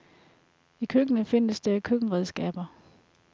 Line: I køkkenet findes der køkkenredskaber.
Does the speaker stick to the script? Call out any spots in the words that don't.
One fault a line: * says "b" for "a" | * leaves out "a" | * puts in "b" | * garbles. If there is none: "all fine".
all fine